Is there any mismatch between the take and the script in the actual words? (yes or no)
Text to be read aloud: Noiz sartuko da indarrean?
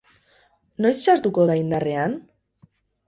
no